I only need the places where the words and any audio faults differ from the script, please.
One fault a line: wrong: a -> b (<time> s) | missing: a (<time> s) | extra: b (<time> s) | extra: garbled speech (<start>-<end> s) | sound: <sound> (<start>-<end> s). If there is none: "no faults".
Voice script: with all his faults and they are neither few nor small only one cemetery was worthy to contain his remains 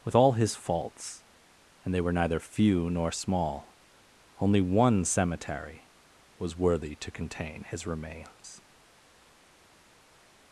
wrong: are -> were (2.0 s)